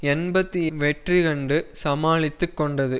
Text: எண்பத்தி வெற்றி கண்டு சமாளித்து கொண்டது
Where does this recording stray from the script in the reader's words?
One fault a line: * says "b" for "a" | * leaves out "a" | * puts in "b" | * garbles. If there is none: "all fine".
all fine